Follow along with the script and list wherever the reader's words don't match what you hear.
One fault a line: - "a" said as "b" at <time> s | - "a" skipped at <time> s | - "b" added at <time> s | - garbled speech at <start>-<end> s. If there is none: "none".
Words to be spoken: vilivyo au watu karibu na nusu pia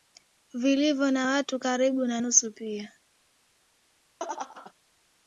- "au" said as "na" at 1.1 s